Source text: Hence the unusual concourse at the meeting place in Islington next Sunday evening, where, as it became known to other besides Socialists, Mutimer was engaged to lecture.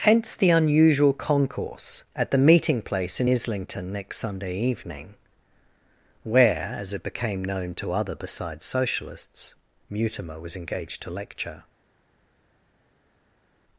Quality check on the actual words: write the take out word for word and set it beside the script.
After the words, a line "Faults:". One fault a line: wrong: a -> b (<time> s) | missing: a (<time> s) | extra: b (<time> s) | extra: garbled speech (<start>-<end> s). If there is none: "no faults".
Hence the unusual concourse at the meeting place in Islington next Sunday evening, where, as it became known to other besides Socialists, Mutimer was engaged to lecture.
Faults:
no faults